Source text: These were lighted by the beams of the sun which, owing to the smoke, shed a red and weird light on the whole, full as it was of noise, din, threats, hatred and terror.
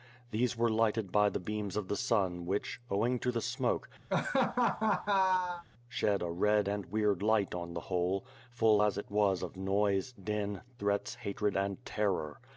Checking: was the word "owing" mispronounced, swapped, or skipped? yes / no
no